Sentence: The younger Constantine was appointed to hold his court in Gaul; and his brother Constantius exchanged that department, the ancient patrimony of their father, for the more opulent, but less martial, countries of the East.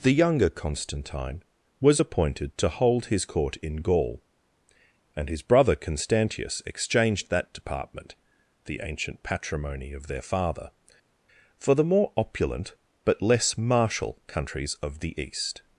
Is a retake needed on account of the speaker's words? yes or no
no